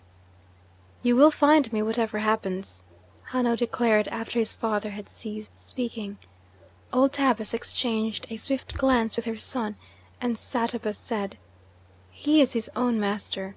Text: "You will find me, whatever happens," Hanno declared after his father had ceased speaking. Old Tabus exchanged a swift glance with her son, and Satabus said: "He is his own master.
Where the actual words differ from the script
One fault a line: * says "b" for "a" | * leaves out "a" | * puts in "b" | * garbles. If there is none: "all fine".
all fine